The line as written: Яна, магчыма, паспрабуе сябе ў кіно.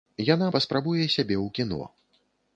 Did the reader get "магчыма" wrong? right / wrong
wrong